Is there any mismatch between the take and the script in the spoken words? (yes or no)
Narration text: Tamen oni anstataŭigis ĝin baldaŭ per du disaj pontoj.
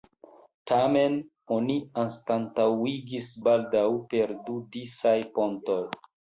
yes